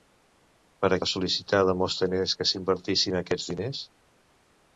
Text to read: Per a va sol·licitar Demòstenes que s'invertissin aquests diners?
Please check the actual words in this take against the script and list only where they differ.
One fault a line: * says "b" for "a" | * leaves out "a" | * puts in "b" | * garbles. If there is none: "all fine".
all fine